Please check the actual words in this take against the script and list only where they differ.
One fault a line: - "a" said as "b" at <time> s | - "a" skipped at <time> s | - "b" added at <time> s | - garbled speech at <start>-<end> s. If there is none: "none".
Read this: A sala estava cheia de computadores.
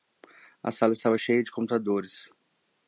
none